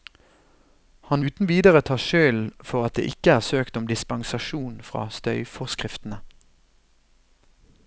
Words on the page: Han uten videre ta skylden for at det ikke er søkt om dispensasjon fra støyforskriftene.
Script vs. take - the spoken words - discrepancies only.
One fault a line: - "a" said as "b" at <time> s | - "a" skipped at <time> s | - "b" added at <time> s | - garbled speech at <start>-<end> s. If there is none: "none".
none